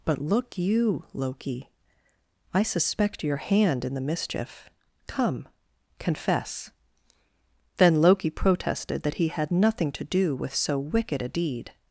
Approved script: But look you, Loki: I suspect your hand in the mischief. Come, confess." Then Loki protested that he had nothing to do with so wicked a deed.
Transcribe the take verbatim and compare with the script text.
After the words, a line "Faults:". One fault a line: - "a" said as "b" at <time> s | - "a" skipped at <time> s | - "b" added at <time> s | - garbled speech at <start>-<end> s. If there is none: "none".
But look you, Loki: I suspect your hand in the mischief. Come, confess." Then Loki protested that he had nothing to do with so wicked a deed.
Faults:
none